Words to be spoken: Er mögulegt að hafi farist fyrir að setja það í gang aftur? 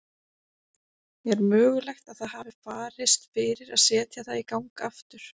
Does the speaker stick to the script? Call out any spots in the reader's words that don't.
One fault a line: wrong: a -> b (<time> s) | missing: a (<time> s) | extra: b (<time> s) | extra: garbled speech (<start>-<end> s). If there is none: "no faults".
extra: það (2.2 s)